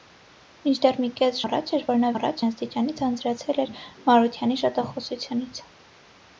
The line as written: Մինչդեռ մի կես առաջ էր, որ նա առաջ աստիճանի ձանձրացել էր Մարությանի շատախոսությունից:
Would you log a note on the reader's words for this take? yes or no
no